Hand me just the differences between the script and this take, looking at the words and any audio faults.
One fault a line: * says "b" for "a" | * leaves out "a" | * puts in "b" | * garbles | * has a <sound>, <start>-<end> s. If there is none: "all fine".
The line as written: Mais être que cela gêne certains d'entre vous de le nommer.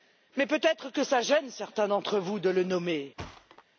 * puts in "peut"
* has a thud, 3.2-3.6 s